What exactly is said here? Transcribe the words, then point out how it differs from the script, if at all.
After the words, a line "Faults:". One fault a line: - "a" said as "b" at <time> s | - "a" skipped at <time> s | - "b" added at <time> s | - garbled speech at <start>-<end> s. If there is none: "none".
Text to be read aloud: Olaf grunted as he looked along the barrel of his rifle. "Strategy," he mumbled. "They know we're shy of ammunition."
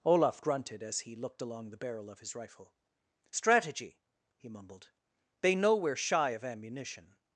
Olaf grunted as he looked along the barrel of his rifle. "Strategy," he mumbled. "They know we're shy of ammunition."
Faults:
none